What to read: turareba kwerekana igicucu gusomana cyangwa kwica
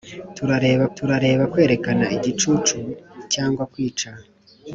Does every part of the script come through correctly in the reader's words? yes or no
no